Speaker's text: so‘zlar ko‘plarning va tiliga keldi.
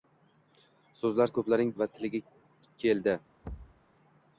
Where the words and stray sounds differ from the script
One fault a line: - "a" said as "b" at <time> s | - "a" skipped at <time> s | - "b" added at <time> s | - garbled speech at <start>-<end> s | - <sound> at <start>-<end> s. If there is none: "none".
- thud at 3.4-3.8 s